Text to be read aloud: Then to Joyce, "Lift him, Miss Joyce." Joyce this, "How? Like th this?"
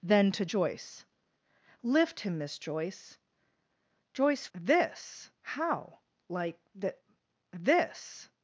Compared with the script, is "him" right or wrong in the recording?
right